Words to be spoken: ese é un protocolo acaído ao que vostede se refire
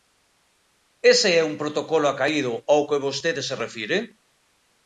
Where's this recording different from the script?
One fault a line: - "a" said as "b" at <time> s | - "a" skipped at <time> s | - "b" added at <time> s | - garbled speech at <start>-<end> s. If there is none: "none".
none